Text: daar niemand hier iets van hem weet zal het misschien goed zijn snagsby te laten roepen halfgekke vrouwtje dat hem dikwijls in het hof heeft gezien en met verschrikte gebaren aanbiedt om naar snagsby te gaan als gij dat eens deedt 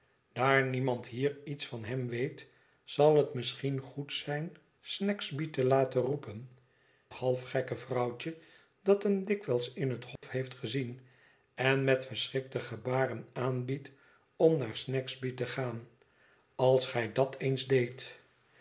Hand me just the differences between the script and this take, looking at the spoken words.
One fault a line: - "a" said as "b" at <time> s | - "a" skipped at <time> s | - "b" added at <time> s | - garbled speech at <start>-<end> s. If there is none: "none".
none